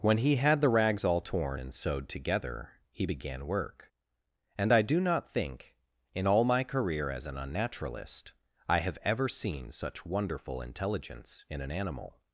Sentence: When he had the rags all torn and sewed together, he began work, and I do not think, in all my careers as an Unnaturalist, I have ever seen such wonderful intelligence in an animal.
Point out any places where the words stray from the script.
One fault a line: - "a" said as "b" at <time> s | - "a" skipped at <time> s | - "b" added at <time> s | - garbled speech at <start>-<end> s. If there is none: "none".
- "careers" said as "career" at 6.6 s